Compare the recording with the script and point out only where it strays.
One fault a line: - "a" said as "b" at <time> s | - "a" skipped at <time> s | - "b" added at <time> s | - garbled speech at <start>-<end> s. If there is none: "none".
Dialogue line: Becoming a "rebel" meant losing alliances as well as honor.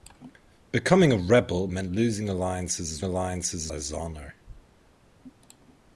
- "well" said as "alliances" at 3.0 s